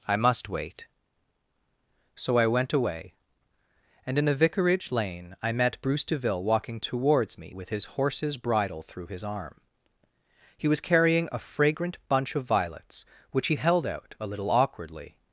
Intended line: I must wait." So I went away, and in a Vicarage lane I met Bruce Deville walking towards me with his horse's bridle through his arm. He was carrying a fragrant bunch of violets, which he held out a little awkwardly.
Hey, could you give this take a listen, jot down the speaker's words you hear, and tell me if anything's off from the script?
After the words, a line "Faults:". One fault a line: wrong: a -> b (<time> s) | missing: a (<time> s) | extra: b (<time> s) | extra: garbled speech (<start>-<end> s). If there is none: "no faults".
I must wait." So I went away, and in a Vicarage lane I met Bruce Deville walking towards me with his horse's bridle through his arm. He was carrying a fragrant bunch of violets, which he held out a little awkwardly.
Faults:
no faults